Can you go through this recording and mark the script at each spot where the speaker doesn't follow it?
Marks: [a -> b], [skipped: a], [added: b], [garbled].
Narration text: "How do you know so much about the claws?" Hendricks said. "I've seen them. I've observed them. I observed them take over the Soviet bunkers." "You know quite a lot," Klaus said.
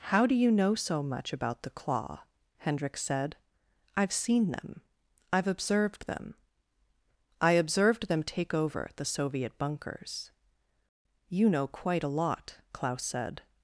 "How do you know so much about the [claws?" -> claw] Hendricks said. "I've seen them. I've observed them. I observed them take over the Soviet bunkers." "You know quite a lot," Klaus said.